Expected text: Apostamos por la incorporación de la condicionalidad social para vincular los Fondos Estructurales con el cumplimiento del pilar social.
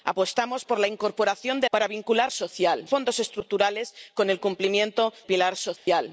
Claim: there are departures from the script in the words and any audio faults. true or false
true